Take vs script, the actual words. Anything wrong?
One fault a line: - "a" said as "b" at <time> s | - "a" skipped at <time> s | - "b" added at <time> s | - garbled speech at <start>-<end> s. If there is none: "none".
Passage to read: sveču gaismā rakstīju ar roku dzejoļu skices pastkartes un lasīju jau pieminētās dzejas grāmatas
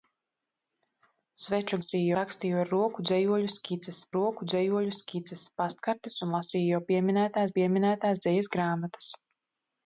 - "gaismā" said as "lasīju" at 1.8 s
- "roku dzejoļu skices" added at 4.2 s
- "pieminētās" added at 7.6 s